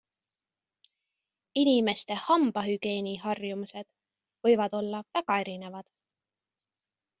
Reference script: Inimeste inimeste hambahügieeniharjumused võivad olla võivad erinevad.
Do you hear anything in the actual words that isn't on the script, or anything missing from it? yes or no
yes